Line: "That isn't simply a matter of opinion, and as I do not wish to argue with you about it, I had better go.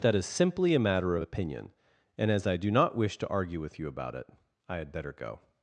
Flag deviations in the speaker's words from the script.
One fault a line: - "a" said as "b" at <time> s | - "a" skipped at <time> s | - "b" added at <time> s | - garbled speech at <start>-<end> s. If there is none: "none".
- "isn't" said as "is" at 0.1 s